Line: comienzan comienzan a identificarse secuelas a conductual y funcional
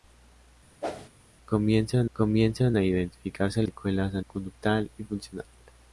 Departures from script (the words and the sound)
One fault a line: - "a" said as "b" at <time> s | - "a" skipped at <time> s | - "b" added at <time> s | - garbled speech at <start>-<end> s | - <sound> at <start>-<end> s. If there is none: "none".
- whoosh at 0.8-1.1 s